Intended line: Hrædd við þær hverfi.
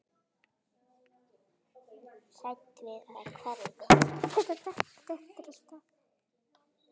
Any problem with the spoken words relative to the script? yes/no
no